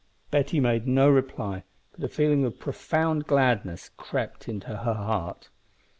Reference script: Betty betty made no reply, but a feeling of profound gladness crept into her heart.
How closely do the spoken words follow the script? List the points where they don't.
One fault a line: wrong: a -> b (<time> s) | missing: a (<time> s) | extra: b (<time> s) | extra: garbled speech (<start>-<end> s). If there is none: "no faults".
missing: betty (0.6 s)